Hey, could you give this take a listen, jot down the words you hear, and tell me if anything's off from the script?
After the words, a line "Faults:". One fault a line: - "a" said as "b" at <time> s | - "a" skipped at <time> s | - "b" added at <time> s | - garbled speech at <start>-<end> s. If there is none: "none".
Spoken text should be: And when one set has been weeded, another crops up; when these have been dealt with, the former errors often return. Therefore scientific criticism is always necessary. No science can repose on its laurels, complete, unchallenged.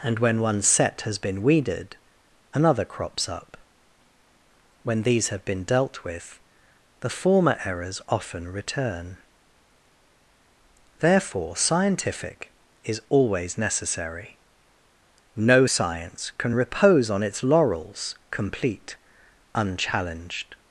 And when one set has been weeded, another crops up; when these have been dealt with, the former errors often return. Therefore scientific is always necessary. No science can repose on its laurels, complete, unchallenged.
Faults:
- "criticism" skipped at 12.5 s